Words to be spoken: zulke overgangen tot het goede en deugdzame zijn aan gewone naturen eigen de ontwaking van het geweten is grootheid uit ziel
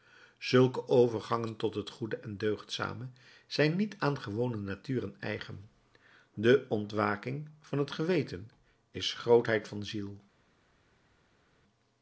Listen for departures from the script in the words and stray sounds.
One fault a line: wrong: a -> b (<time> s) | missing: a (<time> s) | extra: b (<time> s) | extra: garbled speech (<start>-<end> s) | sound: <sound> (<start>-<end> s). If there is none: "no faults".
extra: niet (3.8 s)
wrong: uit -> van (9.7 s)